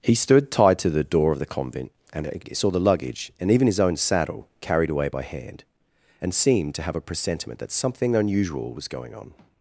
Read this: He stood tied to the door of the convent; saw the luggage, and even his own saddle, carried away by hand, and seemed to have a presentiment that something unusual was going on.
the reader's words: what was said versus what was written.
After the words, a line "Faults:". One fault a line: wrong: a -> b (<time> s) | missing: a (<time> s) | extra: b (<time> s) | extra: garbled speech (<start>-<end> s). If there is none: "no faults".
He stood tied to the door of the convent; and saw the luggage, and even his own saddle, carried away by hand, and seemed to have a presentiment that something unusual was going on.
Faults:
extra: and (2.1 s)